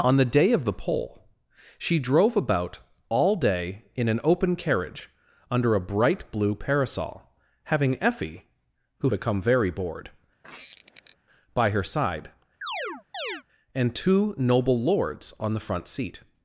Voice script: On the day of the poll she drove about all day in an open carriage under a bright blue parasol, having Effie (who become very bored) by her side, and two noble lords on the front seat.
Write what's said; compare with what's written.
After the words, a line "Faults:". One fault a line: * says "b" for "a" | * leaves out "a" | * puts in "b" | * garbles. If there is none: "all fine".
On the day of the poll she drove about all day in an open carriage under a bright blue parasol, having Effie (who become very bored) by her side, and two noble lords on the front seat.
Faults:
all fine